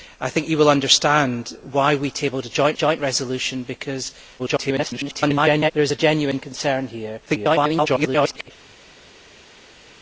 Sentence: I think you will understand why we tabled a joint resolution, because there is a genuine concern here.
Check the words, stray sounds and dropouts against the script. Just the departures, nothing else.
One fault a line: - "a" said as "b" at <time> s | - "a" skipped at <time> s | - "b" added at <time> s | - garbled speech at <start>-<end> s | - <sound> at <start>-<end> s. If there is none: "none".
- "joint" added at 2.7 s
- garbled speech at 4.4-5.7 s
- garbled speech at 7.3-8.5 s